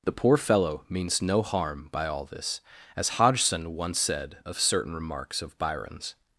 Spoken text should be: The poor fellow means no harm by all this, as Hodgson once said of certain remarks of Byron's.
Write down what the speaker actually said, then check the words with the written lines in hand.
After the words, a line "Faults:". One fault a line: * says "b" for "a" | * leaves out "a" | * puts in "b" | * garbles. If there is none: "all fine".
The poor fellow means no harm by all this, as Hodgson once said of certain remarks of Byron's.
Faults:
all fine